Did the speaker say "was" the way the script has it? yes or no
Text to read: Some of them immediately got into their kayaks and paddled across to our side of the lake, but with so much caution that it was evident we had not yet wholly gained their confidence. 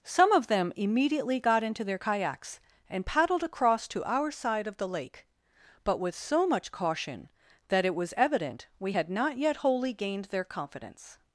yes